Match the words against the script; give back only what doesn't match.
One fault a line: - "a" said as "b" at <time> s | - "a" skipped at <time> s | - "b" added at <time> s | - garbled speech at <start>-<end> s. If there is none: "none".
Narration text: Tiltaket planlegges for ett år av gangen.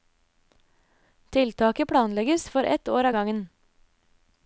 none